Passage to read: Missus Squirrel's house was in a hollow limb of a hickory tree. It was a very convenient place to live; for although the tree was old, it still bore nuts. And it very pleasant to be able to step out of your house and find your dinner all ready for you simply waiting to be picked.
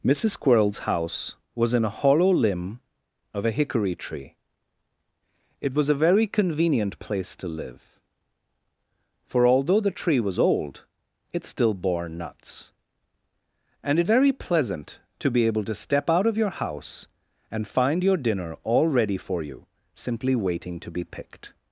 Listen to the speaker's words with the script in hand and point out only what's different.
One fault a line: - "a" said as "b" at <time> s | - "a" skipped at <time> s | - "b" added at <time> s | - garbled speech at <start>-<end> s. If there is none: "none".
none